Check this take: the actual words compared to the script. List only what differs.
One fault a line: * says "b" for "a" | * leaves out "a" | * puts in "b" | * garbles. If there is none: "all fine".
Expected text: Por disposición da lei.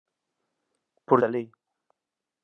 * leaves out "disposición"